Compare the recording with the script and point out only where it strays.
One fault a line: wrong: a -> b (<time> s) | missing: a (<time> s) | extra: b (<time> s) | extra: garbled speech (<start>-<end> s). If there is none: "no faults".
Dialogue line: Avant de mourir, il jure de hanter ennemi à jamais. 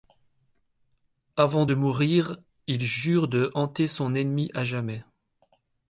extra: son (3.9 s)